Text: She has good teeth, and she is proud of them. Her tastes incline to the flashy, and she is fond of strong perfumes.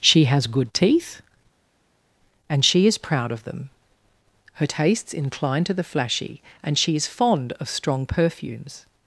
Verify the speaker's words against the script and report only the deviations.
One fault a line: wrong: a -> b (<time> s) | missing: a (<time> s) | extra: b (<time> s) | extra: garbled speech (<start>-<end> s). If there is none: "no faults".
no faults